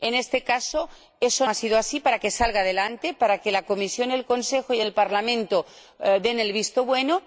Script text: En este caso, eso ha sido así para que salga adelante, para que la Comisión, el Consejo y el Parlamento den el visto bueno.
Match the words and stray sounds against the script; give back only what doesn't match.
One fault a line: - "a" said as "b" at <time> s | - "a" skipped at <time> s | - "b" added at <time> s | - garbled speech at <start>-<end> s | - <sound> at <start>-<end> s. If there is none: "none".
none